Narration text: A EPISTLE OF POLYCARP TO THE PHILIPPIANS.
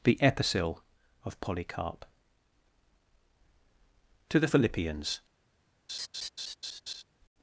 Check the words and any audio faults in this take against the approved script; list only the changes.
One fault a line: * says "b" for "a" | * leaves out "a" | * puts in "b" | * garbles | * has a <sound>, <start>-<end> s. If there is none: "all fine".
* says "THE" for "A"
* has a laugh, 5.9-7.0 s